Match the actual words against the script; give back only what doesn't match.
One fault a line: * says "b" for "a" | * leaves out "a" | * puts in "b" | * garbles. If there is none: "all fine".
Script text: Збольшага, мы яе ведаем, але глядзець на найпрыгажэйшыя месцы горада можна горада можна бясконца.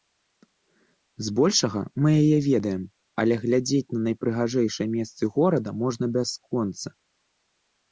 * leaves out "горада можна"